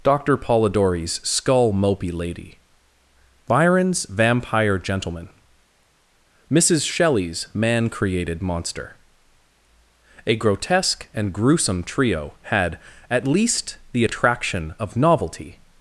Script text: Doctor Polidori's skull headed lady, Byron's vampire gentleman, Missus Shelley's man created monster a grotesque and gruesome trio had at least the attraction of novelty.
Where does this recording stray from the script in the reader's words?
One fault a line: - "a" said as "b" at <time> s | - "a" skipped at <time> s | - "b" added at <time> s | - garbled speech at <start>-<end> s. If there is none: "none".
- "headed" said as "mopey" at 1.7 s